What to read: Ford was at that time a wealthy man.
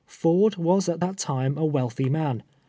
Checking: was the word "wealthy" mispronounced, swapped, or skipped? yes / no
no